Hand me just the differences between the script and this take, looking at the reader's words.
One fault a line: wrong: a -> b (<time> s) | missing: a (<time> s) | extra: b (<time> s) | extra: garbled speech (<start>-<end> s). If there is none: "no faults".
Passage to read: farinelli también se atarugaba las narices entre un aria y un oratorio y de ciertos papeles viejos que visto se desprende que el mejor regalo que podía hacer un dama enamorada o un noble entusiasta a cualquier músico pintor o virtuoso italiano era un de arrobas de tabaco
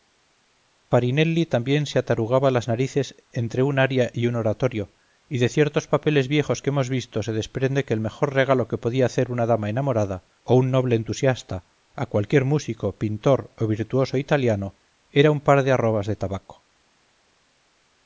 extra: hemos (6.7 s)
wrong: un -> una (9.3 s)
extra: par (15.4 s)